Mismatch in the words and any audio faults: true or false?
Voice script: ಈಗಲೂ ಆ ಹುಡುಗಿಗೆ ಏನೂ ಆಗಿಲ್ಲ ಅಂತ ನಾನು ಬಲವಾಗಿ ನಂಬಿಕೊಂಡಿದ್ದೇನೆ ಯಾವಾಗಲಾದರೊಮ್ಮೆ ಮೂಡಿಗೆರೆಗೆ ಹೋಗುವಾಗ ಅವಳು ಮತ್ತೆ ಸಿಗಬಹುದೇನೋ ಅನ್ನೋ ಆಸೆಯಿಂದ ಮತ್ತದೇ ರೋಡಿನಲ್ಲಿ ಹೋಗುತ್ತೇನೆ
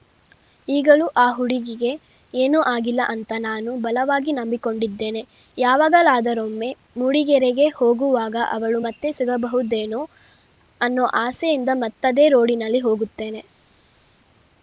false